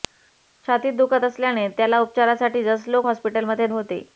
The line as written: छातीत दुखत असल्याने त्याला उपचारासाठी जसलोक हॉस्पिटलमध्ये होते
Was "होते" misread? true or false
false